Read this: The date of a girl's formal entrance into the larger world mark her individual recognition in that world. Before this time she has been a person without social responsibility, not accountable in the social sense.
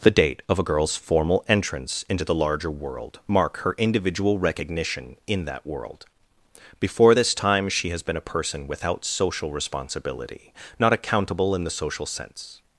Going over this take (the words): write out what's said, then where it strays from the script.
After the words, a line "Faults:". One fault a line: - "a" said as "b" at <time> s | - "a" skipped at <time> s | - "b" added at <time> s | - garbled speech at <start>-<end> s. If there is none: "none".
The date of a girl's formal entrance into the larger world mark her individual recognition in that world. Before this time she has been a person without social responsibility, not accountable in the social sense.
Faults:
none